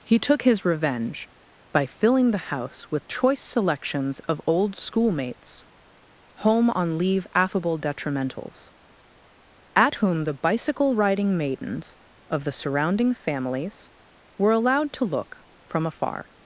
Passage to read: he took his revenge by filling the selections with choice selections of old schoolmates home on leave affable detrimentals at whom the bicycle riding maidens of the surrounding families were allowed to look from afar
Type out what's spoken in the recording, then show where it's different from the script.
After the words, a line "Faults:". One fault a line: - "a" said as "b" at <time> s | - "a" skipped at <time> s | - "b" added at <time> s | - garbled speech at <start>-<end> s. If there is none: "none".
he took his revenge by filling the house with choice selections of old schoolmates home on leave affable detrimentals at whom the bicycle riding maidens of the surrounding families were allowed to look from afar
Faults:
- "selections" said as "house" at 2.5 s